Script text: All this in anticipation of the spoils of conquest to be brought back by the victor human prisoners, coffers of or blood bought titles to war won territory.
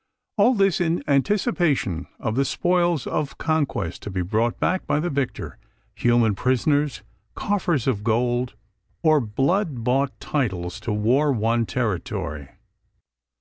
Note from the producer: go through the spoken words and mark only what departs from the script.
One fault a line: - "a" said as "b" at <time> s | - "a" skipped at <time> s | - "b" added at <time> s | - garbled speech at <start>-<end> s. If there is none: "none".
- "gold" added at 8.0 s